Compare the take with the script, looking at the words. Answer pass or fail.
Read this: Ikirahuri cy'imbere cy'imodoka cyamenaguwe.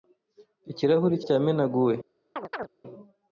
fail